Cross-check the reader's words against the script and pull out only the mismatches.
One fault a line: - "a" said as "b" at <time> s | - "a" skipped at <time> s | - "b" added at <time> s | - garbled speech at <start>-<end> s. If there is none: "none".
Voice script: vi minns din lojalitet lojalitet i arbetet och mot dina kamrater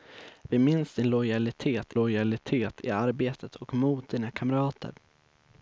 none